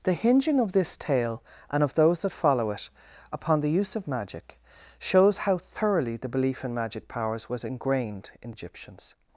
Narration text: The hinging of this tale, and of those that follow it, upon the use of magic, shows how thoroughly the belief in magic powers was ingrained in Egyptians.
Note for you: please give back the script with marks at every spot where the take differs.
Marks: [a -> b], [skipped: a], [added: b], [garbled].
The hinging of this tale, and of those that follow it, upon the use of magic, shows how thoroughly the belief in magic powers was ingrained in Egyptians.